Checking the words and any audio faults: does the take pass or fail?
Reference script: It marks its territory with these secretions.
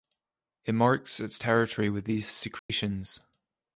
fail